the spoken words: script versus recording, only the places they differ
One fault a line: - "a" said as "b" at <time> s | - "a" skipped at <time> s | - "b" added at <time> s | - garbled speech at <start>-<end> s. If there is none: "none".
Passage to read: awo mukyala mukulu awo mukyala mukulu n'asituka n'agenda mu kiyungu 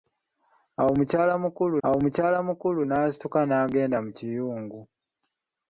none